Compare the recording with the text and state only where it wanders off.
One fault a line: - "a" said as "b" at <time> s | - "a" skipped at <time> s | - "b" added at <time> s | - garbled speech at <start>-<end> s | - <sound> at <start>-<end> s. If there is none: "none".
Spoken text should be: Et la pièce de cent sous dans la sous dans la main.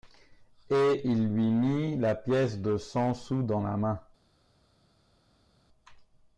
- "il lui mit" added at 1.0 s
- "sous dans la" skipped at 3.8 s